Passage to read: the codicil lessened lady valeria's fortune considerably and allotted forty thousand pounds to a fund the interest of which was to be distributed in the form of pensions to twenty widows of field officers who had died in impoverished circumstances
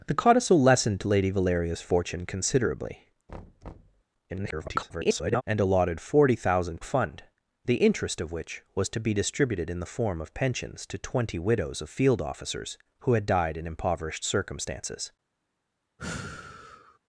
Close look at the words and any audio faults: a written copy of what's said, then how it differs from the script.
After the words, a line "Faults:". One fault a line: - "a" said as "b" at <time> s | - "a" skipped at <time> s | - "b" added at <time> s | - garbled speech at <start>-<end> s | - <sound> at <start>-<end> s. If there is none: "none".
the codicil lessened lady valeria's fortune considerably [garbled] and allotted forty thousand a fund the interest of which was to be distributed in the form of pensions to twenty widows of field officers who had died in impoverished circumstances
Faults:
- thud at 3.3-4.0 s
- garbled speech at 4.3-5.4 s
- "pounds to" skipped at 6.8 s
- sigh at 16.0-17.0 s